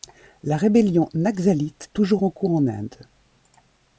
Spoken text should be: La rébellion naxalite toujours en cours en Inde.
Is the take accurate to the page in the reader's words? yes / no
yes